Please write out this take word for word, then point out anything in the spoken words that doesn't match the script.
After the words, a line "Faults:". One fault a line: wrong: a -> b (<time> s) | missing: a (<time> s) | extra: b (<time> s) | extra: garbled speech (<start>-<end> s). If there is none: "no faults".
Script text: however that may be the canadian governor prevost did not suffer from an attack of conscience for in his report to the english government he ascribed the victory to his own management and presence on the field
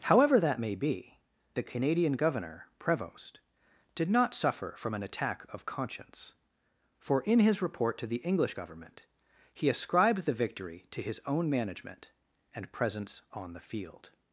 however that may be the canadian governor prevost did not suffer from an attack of conscience for in his report to the english government he ascribed the victory to his own management and presence on the field
Faults:
no faults